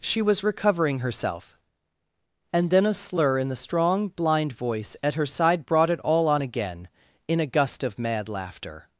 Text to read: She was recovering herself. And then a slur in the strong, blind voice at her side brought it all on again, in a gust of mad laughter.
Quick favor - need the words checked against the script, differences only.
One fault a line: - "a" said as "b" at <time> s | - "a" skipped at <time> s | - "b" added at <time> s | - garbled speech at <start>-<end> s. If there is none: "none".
none